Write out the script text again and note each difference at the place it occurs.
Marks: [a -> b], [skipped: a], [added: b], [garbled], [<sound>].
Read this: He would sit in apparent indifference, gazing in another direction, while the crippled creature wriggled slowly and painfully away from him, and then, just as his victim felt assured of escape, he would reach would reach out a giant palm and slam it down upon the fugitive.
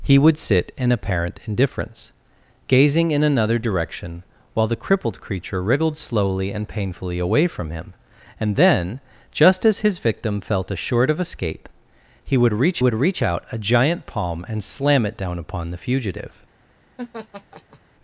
He would sit in apparent indifference, gazing in another direction, while the crippled creature wriggled slowly and painfully away from him, and then, just as his victim felt assured of escape, he would reach would reach out a giant palm and slam it down upon the fugitive. [laugh]